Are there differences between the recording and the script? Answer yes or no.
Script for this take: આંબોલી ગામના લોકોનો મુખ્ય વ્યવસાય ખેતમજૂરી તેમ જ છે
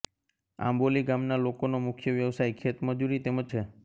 no